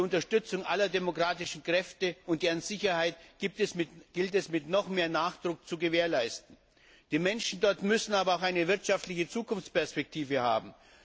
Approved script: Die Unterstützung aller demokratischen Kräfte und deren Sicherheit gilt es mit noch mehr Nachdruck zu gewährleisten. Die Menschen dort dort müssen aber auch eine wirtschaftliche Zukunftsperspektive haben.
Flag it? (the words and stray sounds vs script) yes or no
yes